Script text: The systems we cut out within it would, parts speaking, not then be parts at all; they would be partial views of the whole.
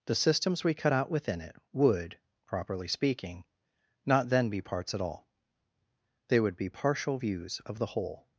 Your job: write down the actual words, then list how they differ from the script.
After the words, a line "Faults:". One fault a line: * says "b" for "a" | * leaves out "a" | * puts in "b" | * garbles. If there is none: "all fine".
The systems we cut out within it would, properly speaking, not then be parts at all; they would be partial views of the whole.
Faults:
* says "properly" for "parts"